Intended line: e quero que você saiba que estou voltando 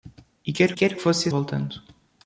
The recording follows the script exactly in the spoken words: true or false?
false